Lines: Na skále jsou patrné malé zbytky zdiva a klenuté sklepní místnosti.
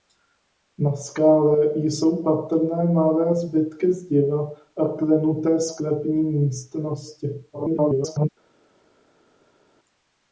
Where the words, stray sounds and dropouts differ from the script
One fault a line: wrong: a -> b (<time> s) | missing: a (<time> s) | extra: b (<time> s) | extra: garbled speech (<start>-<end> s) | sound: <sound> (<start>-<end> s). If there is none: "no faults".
extra: garbled speech (7.5-8.3 s)